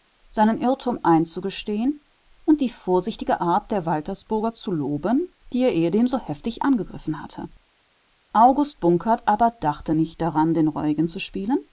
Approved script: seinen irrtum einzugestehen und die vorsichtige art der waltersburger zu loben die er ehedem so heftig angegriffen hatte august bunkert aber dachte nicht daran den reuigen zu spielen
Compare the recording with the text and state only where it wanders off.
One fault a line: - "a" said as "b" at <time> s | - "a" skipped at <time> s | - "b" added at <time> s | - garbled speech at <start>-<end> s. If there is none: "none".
none